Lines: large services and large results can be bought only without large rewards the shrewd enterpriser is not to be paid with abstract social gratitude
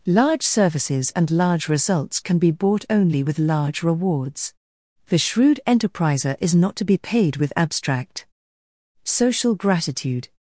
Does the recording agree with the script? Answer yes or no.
no